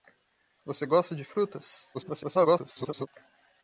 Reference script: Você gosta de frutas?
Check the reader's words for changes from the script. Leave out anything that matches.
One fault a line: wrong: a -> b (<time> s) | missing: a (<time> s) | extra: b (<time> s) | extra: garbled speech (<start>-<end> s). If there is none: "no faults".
extra: garbled speech (1.9-3.1 s)